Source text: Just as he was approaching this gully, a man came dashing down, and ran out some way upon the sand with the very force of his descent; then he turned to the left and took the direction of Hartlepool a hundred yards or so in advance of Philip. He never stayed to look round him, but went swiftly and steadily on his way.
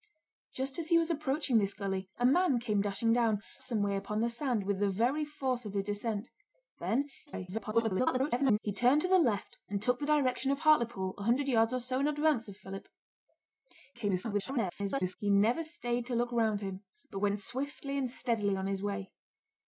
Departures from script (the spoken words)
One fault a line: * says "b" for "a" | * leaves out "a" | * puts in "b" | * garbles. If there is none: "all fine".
* leaves out "and ran out"
* garbles
* garbles